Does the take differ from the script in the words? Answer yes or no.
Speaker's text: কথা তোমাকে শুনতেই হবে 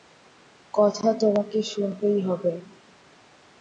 no